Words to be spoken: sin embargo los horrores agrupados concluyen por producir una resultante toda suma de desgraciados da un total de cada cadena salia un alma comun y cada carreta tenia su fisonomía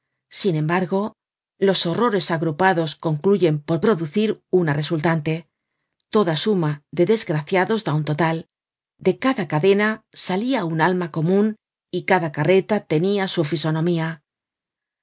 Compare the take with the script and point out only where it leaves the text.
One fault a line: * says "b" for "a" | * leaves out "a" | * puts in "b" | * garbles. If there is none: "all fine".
all fine